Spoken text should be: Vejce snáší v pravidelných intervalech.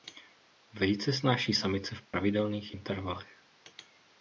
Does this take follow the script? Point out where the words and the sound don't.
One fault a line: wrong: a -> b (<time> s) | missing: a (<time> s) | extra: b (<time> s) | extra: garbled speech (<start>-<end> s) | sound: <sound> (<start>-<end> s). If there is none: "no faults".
extra: samice (1.5 s)
sound: dropout (2.1-2.1 s)